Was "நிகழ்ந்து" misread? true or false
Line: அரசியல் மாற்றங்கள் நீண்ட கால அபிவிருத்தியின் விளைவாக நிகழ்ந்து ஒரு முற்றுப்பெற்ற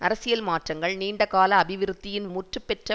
true